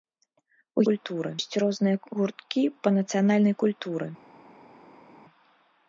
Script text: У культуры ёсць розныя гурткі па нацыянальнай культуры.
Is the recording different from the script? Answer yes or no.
no